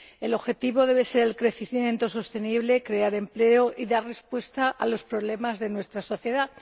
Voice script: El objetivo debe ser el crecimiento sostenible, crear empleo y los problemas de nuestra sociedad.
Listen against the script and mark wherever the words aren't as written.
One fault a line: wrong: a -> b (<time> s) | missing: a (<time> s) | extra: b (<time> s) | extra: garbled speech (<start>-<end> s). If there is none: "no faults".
extra: dar respuesta a (3.9 s)